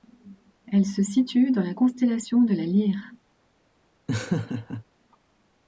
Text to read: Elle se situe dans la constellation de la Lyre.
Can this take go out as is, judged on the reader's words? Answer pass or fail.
pass